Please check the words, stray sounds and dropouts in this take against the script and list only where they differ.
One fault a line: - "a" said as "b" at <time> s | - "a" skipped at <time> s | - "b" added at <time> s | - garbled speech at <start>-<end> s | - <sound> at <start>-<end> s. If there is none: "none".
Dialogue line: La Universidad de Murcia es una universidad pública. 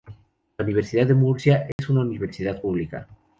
- dropout at 1.7-1.8 s